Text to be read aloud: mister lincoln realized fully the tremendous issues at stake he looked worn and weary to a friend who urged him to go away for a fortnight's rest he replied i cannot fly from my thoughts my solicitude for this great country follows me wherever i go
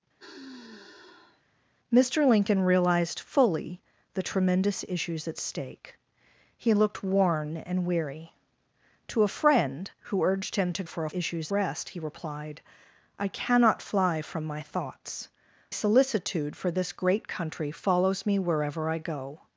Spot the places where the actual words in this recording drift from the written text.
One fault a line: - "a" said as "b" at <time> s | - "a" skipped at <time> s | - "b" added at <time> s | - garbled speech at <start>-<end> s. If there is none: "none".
- "go away" skipped at 10.8 s
- "fortnight's" said as "issues" at 11.1 s
- "my" skipped at 15.3 s